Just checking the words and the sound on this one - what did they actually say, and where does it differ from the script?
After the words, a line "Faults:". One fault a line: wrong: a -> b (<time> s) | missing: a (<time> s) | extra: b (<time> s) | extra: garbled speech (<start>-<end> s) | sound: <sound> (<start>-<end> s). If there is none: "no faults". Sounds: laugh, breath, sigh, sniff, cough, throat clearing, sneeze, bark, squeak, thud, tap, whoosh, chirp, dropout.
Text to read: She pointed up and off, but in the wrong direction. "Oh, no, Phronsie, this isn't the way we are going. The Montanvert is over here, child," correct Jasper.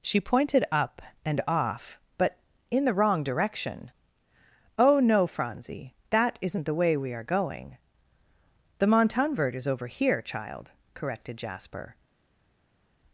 She pointed up and off, but in the wrong direction. "Oh, no, Phronsie, that isn't the way we are going. The Montanvert is over here, child," corrected Jasper.
Faults:
wrong: this -> that (6.1 s)
wrong: correct -> corrected (10.9 s)